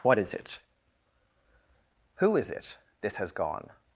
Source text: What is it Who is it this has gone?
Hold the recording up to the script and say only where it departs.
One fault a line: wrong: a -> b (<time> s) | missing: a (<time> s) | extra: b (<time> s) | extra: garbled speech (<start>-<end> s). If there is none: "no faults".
no faults